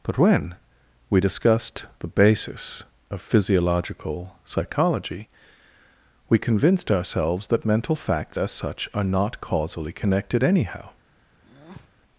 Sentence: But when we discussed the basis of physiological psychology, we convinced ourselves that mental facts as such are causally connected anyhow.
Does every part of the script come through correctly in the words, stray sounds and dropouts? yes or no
no